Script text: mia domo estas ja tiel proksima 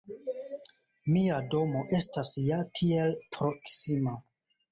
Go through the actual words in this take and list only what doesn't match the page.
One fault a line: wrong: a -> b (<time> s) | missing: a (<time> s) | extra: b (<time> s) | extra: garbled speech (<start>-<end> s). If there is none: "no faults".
no faults